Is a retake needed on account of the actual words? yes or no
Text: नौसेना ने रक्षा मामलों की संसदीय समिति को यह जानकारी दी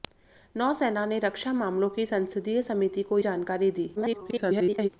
yes